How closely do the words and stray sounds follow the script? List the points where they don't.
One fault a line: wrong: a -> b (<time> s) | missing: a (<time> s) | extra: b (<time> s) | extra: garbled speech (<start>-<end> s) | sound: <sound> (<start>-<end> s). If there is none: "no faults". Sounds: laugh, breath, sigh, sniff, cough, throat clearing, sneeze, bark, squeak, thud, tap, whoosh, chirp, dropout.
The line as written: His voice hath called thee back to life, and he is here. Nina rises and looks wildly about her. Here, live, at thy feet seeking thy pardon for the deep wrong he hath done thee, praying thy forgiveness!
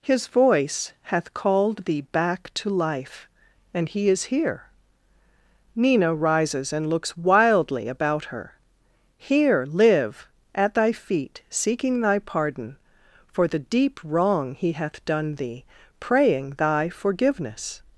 no faults